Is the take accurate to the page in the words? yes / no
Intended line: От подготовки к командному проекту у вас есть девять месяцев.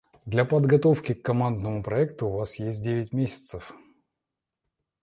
no